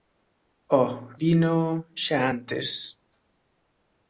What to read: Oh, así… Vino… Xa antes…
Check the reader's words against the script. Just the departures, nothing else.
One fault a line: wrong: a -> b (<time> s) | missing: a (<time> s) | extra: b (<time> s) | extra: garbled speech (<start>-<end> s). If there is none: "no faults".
missing: así (0.9 s)